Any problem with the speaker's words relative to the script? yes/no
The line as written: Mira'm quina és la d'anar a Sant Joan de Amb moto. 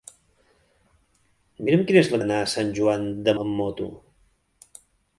no